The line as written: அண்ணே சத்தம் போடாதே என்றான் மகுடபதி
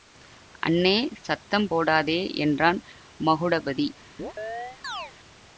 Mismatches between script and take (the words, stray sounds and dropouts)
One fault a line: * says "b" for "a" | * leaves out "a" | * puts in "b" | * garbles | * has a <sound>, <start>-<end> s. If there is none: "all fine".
* has a chirp, 4.2-5.1 s